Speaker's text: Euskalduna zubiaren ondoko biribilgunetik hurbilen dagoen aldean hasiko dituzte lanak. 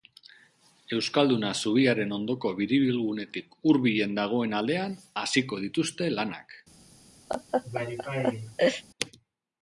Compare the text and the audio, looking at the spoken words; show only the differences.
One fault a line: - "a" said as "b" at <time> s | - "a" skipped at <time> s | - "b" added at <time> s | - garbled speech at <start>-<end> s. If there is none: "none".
none